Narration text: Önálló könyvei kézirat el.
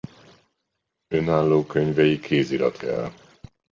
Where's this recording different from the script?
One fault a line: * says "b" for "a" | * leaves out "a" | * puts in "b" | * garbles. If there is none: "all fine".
all fine